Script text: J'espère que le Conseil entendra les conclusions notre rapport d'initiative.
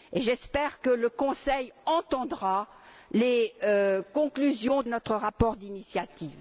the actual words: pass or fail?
pass